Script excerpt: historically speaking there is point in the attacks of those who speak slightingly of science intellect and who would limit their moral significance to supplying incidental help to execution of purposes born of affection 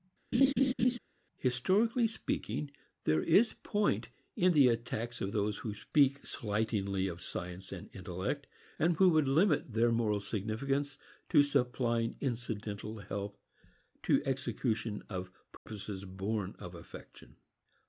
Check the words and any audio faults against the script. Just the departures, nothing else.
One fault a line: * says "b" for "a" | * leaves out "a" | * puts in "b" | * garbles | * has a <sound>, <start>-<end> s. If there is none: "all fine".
* has a laugh, 0.3-1.0 s
* puts in "and"
* has a dropout, 15.6-15.7 s